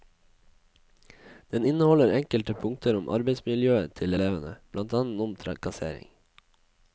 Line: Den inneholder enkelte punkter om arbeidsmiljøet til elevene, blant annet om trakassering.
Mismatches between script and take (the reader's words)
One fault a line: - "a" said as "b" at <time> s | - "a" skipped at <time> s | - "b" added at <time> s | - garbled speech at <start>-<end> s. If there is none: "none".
none